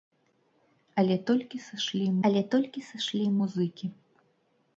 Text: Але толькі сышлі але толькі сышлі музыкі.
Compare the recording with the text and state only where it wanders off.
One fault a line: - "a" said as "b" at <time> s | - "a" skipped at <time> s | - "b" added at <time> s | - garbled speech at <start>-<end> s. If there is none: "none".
none